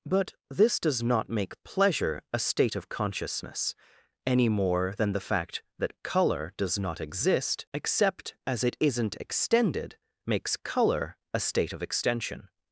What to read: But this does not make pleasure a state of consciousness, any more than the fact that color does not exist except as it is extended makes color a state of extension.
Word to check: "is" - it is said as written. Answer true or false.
false